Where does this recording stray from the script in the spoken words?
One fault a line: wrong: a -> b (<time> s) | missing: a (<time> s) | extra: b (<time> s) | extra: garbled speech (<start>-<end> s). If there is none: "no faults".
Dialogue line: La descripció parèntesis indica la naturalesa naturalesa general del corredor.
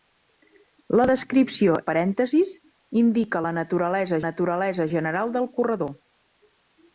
no faults